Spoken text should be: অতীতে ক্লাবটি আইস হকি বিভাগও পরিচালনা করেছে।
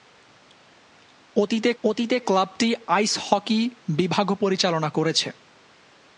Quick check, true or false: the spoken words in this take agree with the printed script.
false